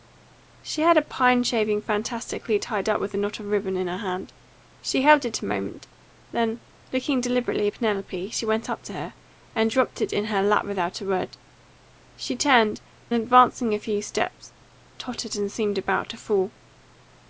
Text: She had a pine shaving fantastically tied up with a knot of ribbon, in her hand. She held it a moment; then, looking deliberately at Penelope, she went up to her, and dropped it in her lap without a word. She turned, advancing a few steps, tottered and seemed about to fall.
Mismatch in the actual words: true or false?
false